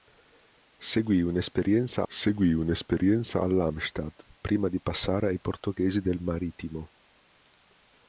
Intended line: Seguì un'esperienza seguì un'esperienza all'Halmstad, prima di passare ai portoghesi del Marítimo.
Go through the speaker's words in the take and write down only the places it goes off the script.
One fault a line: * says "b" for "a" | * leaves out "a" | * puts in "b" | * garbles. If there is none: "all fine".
all fine